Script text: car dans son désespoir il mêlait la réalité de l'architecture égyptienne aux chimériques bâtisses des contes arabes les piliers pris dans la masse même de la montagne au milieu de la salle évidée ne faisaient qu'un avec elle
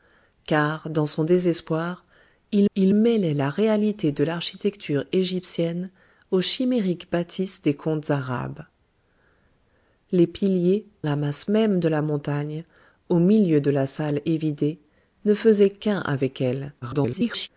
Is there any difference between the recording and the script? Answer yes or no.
yes